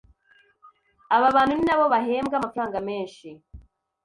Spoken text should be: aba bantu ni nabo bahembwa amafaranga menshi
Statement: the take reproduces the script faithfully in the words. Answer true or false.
true